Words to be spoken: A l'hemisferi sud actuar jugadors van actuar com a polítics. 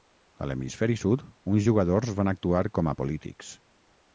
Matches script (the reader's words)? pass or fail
fail